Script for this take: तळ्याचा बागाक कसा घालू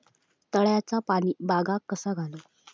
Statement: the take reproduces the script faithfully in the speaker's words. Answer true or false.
false